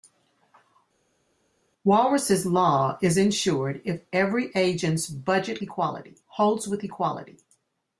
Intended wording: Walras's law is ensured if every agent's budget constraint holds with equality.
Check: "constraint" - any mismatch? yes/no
yes